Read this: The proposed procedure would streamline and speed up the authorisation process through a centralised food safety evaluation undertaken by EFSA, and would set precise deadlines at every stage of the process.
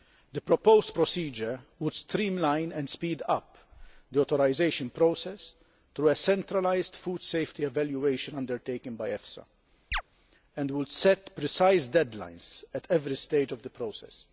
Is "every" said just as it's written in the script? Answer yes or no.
yes